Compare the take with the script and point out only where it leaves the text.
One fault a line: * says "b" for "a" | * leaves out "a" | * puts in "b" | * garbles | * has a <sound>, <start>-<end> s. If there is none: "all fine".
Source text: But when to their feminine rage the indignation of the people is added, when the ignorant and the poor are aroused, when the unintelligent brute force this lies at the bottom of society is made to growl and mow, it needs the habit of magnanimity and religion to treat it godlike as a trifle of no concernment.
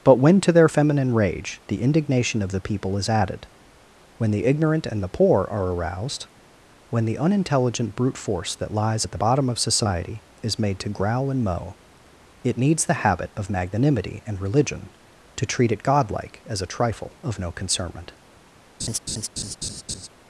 * says "that" for "this"
* has a laugh, 18.8-20.1 s